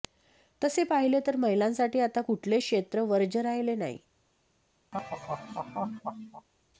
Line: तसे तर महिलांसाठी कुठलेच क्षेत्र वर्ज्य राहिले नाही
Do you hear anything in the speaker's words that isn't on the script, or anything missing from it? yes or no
yes